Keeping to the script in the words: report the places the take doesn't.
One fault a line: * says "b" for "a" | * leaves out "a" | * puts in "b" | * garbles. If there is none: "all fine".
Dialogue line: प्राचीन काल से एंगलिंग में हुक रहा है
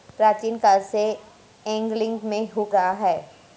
all fine